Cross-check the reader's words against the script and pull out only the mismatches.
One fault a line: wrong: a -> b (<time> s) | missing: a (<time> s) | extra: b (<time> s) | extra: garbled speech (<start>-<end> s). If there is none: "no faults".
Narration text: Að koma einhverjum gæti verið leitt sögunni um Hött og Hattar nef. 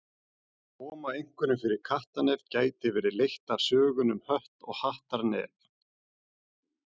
extra: fyrir kattarnef (1.6 s)
extra: af (3.5 s)